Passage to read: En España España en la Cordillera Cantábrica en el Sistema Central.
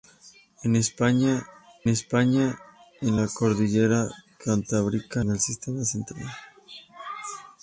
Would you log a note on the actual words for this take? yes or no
no